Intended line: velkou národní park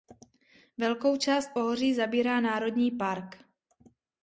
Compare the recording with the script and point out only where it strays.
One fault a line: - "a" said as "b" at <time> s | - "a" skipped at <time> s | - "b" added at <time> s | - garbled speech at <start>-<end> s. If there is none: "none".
- "část pohoří zabírá" added at 1.2 s